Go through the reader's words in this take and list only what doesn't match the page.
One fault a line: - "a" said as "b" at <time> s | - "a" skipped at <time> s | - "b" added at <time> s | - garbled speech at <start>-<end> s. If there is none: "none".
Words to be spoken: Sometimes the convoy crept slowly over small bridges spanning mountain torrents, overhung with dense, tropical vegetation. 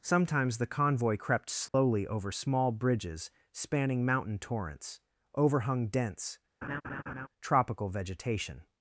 - "with" skipped at 5.9 s